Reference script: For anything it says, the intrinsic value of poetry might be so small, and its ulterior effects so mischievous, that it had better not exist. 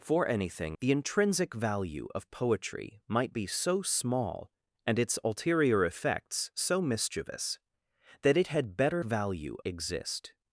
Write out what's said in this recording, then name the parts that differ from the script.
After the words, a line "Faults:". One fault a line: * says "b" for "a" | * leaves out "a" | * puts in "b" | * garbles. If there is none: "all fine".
For anything the intrinsic value of poetry might be so small, and its ulterior effects so mischievous, that it had better value exist.
Faults:
* leaves out "it says"
* says "value" for "not"